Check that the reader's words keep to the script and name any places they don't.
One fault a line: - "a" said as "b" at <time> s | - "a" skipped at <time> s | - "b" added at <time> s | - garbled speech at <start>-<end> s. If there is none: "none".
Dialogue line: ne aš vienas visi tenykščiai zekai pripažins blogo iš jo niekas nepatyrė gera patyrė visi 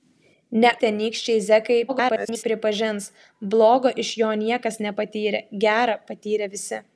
- "aš vienas visi" skipped at 0.7 s
- garbled speech at 1.9-2.4 s